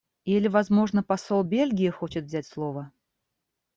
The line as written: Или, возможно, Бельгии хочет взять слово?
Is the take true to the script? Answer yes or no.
no